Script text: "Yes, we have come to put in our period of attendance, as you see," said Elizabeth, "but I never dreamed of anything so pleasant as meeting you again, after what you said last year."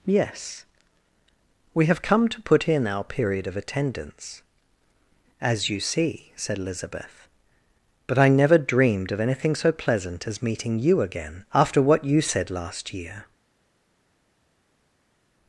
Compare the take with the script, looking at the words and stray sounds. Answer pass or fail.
pass